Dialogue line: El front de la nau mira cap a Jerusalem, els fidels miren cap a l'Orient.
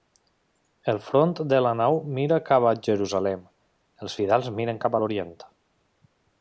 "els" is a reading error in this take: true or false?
false